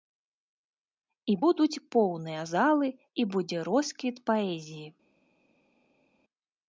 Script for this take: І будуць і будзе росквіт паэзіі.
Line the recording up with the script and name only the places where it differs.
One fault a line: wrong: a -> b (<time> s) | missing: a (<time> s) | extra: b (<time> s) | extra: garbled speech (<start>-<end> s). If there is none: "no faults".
extra: поўныя залы (1.9 s)